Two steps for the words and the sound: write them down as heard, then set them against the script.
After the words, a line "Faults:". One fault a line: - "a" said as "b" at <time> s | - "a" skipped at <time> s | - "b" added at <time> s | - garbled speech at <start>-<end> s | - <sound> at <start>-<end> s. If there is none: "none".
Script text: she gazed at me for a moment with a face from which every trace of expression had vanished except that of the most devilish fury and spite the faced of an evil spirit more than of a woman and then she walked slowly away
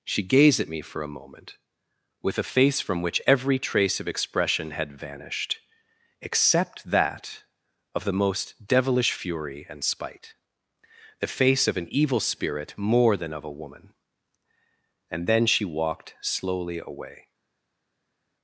she gazed at me for a moment with a face from which every trace of expression had vanished except that of the most devilish fury and spite the face of an evil spirit more than of a woman and then she walked slowly away
Faults:
- "faced" said as "face" at 11.3 s